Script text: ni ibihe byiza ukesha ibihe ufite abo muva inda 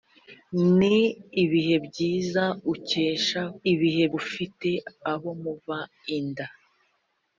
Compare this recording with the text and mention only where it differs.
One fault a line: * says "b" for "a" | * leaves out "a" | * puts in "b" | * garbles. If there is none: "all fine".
all fine